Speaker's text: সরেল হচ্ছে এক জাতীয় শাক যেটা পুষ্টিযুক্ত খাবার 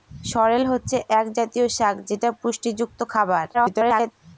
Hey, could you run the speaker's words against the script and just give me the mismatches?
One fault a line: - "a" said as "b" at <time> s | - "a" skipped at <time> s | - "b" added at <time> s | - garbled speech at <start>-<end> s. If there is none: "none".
- garbled speech at 3.5-4.1 s